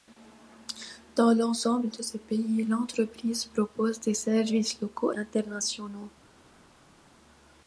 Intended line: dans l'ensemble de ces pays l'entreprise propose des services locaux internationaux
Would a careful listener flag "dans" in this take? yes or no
no